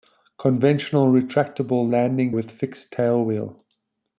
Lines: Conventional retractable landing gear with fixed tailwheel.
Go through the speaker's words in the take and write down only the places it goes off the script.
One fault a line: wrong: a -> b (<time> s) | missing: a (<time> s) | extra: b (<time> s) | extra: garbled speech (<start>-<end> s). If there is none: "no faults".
missing: gear (2.3 s)